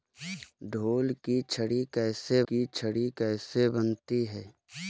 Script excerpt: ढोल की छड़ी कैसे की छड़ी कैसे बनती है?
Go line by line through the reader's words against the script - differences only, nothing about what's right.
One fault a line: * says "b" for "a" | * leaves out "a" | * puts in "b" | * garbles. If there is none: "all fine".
all fine